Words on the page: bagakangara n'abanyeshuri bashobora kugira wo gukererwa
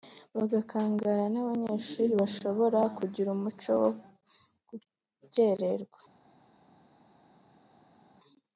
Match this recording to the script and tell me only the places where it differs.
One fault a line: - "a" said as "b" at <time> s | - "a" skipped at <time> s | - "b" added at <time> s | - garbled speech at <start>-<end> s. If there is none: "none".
- "umuco" added at 3.4 s